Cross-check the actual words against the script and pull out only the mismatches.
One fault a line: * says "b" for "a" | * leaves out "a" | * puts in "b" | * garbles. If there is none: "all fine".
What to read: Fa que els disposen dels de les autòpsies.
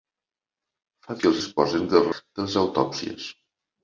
all fine